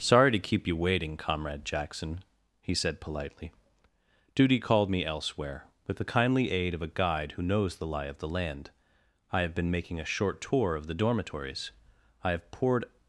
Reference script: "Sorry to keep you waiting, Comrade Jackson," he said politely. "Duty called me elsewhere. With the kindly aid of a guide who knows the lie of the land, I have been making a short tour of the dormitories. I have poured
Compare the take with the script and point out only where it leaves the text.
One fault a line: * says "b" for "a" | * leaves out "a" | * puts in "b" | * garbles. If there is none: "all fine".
all fine